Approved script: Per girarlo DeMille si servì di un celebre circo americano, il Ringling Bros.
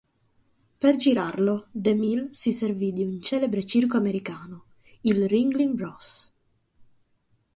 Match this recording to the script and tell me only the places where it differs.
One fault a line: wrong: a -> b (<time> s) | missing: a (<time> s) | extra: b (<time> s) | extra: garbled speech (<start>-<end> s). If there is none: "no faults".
no faults